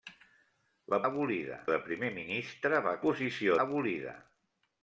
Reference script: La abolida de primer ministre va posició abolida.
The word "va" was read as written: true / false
true